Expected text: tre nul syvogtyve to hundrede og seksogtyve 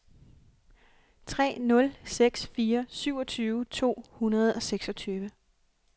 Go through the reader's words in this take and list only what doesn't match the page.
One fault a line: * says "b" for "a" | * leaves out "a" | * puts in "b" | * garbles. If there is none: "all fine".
* puts in "seks fire"